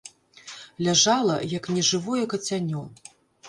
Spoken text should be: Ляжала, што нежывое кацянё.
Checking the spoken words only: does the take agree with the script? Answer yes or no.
no